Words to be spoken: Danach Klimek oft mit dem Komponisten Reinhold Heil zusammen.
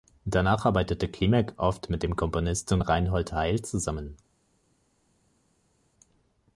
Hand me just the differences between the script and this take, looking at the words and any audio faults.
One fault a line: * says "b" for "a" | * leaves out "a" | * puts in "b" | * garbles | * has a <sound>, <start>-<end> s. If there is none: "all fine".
* puts in "arbeitete"